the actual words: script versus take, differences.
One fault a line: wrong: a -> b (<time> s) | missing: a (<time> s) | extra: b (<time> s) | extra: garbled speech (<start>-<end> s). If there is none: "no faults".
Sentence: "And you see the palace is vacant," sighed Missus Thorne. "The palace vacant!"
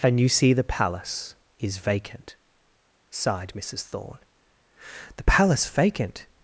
no faults